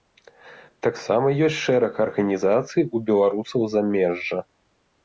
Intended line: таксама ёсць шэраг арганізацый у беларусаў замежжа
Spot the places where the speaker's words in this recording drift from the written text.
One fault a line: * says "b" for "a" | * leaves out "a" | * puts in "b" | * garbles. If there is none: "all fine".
all fine